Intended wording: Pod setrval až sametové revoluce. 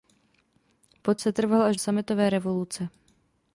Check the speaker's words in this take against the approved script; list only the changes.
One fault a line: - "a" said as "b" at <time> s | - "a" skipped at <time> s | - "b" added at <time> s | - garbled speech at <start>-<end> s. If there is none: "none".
none